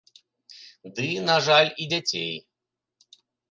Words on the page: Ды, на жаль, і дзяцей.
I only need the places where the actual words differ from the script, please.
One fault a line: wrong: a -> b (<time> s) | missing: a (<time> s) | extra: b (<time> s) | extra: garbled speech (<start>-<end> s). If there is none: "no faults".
no faults